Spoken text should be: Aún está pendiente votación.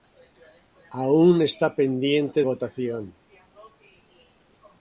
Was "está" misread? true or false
false